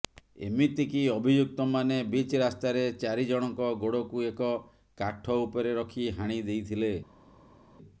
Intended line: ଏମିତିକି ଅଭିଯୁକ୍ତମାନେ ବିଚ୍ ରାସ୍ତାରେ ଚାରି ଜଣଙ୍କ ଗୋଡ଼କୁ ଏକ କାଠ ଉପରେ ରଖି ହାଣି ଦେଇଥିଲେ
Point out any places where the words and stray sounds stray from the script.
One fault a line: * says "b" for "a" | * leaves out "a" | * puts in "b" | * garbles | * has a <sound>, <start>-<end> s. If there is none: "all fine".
all fine